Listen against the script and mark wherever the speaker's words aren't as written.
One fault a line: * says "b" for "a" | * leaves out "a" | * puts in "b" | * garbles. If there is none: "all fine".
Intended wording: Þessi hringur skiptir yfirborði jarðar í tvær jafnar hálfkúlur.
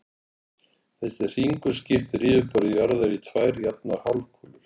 all fine